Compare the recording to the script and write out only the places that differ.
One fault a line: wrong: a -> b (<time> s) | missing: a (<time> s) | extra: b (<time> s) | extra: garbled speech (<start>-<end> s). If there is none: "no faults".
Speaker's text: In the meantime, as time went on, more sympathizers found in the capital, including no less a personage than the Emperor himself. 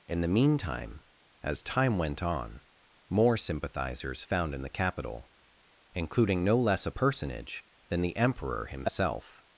no faults